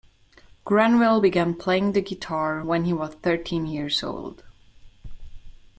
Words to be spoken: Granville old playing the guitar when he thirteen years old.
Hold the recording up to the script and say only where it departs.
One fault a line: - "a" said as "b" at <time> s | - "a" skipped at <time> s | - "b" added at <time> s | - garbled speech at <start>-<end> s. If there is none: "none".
- "old" said as "began" at 1.2 s
- "was" added at 2.9 s